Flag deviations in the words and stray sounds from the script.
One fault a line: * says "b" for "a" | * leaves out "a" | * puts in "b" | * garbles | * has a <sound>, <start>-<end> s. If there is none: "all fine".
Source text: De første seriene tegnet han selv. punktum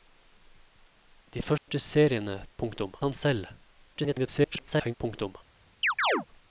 * has a dropout, 1.6-1.7 s
* says "punktum" for "tegnet"
* garbles
* has a chirp, 5.8-6.3 s